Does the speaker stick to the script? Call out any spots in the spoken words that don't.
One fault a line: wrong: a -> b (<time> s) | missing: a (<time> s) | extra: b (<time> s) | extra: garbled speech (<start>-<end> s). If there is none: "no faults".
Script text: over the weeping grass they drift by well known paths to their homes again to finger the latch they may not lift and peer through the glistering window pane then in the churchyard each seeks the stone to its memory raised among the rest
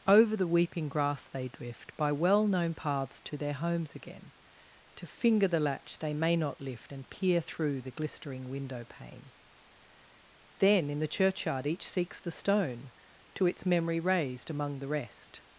no faults